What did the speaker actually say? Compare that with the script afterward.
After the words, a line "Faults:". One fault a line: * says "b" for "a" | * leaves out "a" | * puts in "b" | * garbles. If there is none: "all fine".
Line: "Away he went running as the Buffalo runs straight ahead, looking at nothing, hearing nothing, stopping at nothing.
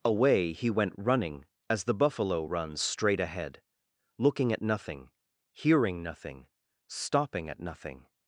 "Away he went running as the Buffalo runs straight ahead, looking at nothing, hearing nothing, stopping at nothing.
Faults:
all fine